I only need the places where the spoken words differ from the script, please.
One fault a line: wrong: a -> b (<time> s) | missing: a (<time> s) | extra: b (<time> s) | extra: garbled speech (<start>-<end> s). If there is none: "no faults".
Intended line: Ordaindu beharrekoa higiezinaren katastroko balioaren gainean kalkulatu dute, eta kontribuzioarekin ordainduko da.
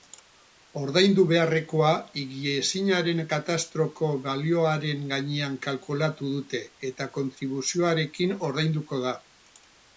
no faults